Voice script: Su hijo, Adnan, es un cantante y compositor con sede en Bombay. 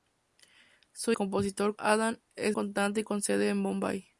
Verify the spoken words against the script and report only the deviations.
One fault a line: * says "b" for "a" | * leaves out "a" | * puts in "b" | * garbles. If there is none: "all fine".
* says "compositor" for "hijo"
* leaves out "un"
* leaves out "compositor"